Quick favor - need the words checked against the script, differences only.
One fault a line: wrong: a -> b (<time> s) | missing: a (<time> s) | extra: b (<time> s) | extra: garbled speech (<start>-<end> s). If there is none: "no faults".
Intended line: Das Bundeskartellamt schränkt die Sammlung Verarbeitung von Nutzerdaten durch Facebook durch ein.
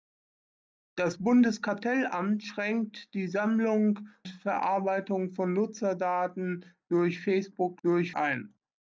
no faults